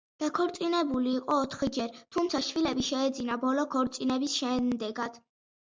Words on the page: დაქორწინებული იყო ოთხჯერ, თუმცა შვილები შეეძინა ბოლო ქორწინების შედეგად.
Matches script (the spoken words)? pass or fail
pass